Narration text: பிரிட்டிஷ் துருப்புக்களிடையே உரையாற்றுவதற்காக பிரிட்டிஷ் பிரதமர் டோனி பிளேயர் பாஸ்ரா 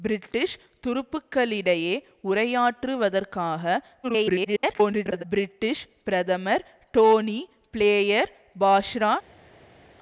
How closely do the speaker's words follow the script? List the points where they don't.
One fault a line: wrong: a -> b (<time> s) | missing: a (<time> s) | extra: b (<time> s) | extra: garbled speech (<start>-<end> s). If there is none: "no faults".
extra: garbled speech (4.0-5.2 s)